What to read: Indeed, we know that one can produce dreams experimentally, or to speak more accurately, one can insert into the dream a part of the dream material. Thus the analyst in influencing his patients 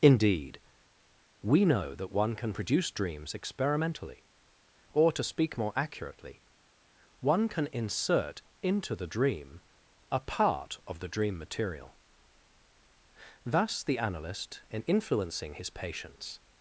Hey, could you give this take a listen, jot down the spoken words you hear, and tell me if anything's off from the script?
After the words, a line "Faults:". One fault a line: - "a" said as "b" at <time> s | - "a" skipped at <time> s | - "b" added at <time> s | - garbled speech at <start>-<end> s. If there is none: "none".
Indeed, we know that one can produce dreams experimentally, or to speak more accurately, one can insert into the dream a part of the dream material. Thus the analyst in influencing his patients
Faults:
none